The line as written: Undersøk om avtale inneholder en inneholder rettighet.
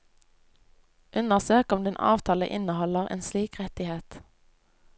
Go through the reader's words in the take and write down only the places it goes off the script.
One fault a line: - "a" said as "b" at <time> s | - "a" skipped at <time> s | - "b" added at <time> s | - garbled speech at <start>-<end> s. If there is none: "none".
- "din" added at 1.8 s
- "inneholder" said as "slik" at 3.2 s